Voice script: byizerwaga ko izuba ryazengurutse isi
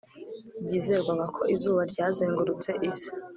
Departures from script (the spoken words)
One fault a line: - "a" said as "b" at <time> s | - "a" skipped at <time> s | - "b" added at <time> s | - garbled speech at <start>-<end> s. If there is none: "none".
none